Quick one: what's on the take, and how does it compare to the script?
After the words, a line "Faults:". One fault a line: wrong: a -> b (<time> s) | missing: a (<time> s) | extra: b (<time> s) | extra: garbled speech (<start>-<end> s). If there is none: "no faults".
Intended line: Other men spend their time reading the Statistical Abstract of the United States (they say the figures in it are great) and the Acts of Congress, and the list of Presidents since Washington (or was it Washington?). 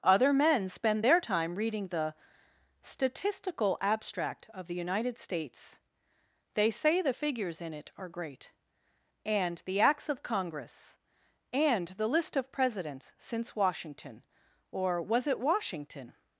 Other men spend their time reading the Statistical Abstract of the United States (they say the figures in it are great) and the Acts of Congress, and the list of Presidents since Washington (or was it Washington?).
Faults:
no faults